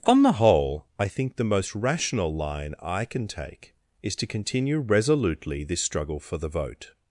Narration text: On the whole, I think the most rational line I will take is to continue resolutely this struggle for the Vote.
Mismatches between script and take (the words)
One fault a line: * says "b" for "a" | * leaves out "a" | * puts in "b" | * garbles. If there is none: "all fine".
* says "can" for "will"